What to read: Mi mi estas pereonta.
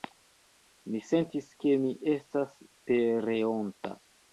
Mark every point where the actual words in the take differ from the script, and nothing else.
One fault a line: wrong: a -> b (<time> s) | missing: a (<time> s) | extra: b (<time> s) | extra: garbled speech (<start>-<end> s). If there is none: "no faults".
extra: sentis ke (1.1 s)